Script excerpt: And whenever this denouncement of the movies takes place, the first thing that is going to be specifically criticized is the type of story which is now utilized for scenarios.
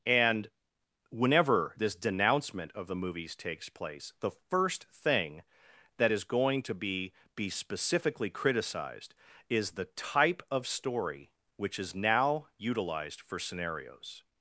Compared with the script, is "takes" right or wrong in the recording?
right